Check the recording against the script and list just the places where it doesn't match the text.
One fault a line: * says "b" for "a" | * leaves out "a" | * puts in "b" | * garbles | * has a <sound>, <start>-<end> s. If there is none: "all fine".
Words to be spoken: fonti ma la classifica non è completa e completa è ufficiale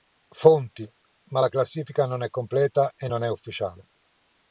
* says "non" for "completa"